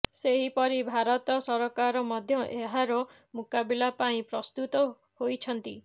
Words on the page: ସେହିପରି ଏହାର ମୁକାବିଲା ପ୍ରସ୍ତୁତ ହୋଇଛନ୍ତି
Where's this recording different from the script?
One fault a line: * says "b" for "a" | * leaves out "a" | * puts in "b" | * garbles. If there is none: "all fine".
* puts in "ଭାରତ ସରକାର ମଧ୍ୟ"
* puts in "ପାଇଁ"